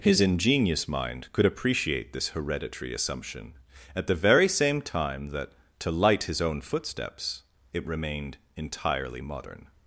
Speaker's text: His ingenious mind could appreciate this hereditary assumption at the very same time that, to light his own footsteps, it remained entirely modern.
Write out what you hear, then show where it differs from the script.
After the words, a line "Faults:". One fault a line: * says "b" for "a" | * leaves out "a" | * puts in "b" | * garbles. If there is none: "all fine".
His ingenious mind could appreciate this hereditary assumption at the very same time that, to light his own footsteps, it remained entirely modern.
Faults:
all fine